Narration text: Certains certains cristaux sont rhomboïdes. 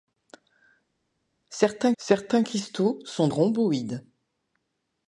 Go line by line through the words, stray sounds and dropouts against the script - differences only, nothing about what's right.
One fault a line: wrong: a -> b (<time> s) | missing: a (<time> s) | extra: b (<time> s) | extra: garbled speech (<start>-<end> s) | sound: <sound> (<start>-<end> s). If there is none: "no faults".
no faults